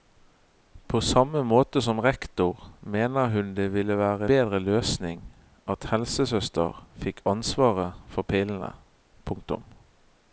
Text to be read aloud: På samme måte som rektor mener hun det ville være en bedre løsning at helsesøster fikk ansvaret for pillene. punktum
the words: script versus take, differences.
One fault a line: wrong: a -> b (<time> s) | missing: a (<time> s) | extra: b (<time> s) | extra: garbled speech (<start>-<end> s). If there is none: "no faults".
missing: en (4.2 s)